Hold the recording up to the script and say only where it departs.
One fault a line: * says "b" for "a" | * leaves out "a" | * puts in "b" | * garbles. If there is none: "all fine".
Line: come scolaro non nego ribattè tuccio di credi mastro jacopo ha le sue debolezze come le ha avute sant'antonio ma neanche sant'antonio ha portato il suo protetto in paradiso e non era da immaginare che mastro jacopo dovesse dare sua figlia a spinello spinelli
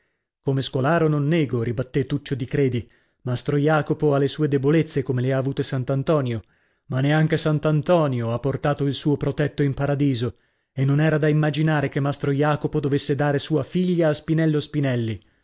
all fine